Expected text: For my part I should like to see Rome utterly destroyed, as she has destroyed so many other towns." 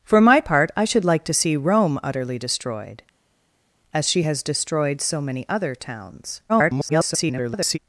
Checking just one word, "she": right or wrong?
right